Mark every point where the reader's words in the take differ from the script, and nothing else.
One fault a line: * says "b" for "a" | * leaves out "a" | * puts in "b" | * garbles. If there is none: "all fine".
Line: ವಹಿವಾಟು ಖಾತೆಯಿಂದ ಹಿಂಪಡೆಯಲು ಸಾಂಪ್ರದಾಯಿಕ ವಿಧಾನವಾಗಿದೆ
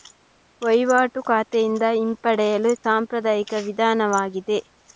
all fine